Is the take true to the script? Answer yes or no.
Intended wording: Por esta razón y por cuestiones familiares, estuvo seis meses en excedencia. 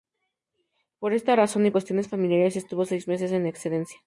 no